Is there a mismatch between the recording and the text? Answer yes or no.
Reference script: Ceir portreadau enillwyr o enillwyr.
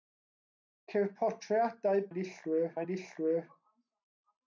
no